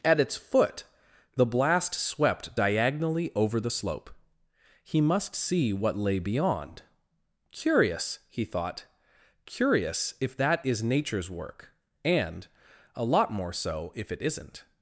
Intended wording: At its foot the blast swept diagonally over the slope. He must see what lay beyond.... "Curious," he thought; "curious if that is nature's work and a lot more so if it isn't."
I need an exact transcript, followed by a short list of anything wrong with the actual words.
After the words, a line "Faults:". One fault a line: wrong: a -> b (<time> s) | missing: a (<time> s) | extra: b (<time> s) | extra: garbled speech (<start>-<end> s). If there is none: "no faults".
At its foot the blast swept diagonally over the slope. He must see what lay beyond.... "Curious," he thought; "curious if that is nature's work and a lot more so if it isn't."
Faults:
no faults